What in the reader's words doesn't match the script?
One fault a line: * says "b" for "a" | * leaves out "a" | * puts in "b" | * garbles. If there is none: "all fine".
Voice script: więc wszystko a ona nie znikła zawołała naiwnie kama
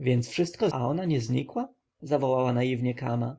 all fine